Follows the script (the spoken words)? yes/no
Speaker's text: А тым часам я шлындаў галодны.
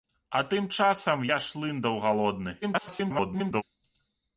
no